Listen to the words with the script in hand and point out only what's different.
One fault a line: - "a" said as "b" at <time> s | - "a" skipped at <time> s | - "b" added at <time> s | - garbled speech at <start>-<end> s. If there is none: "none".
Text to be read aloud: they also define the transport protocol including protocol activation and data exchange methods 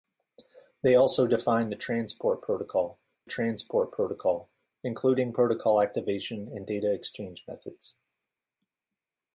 - "transport protocol" added at 3.2 s